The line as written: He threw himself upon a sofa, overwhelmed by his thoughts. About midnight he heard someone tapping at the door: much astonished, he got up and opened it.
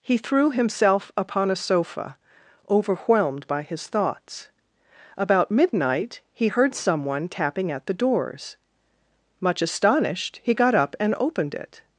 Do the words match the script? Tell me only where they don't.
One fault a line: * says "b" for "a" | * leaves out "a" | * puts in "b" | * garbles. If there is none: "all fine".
* says "doors" for "door"